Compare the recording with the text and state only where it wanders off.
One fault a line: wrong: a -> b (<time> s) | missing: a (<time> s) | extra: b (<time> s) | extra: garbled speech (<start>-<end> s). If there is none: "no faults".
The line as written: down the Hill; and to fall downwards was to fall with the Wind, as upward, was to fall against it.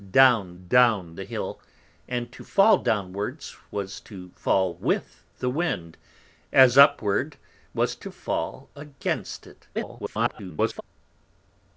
extra: down (0.7 s)
extra: garbled speech (9.8-10.8 s)